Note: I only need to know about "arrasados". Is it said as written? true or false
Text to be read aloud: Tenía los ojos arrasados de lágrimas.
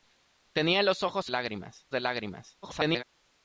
false